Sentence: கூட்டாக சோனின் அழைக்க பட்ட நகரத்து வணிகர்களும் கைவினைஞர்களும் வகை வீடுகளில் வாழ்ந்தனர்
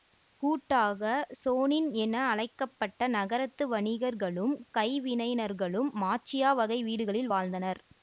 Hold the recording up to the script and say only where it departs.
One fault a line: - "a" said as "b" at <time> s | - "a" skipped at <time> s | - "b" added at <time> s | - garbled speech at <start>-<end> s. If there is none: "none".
- "என" added at 2.0 s
- "மாச்சியா" added at 6.0 s